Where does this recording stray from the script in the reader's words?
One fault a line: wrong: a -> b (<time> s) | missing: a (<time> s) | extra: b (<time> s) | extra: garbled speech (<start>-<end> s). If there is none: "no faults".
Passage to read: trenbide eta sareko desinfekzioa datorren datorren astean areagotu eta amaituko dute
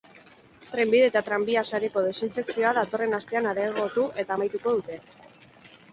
extra: tranbia (1.3 s)
missing: datorren (3.2 s)